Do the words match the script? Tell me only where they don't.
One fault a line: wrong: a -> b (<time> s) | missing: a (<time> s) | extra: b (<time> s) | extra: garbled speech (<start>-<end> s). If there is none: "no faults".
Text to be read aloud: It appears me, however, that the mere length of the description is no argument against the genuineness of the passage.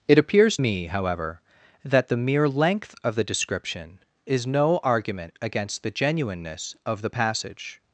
no faults